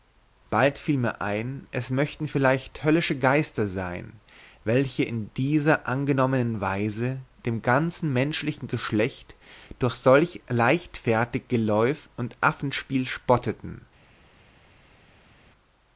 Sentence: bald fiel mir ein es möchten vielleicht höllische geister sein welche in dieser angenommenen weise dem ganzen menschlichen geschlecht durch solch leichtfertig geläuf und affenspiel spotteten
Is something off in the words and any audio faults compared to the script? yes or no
no